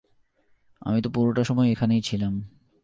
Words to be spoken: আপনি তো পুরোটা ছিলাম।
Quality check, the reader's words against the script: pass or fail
fail